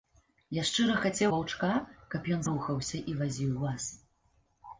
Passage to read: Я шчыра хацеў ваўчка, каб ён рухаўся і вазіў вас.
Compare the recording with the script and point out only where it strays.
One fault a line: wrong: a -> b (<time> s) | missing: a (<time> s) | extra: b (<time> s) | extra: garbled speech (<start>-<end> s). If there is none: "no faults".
no faults